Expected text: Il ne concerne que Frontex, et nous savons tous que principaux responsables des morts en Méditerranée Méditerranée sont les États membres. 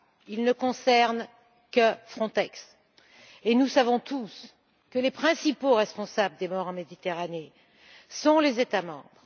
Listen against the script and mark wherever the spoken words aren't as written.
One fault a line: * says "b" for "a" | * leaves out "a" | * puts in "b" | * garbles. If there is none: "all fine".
* puts in "les"
* leaves out "Méditerranée"